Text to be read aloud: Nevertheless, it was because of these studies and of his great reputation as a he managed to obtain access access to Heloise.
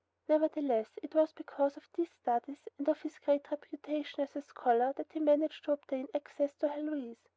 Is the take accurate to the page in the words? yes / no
no